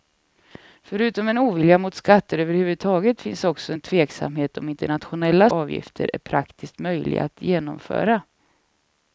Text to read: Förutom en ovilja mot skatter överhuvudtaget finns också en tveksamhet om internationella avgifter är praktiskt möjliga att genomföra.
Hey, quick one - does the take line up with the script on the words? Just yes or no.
yes